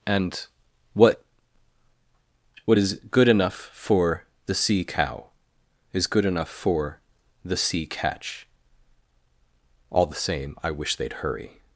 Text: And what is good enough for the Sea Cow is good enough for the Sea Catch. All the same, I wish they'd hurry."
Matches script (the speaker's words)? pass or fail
fail